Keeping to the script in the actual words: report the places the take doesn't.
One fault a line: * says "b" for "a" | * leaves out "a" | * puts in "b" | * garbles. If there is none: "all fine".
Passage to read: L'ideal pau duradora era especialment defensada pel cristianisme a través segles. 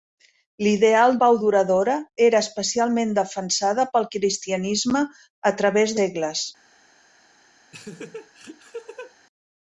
all fine